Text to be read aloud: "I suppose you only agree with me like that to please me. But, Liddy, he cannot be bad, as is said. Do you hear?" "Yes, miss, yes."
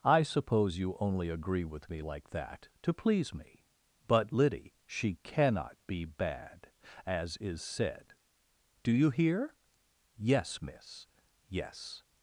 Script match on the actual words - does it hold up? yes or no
no